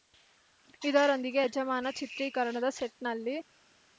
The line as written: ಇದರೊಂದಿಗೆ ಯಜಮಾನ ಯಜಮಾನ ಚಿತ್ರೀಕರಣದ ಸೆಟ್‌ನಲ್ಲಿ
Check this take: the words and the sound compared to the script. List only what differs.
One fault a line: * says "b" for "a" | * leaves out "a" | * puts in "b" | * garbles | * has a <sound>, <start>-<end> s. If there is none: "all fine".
* leaves out "ಯಜಮಾನ"